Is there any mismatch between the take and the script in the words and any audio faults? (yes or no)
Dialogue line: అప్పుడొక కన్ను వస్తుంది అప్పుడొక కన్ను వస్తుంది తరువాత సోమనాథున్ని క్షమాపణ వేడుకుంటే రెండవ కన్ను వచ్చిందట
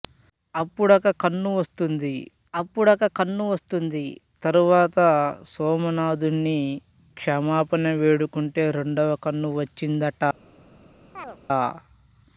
yes